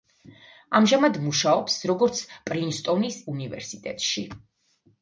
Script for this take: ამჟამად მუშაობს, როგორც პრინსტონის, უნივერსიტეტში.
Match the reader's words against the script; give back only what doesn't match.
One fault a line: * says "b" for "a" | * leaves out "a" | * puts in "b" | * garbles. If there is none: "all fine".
all fine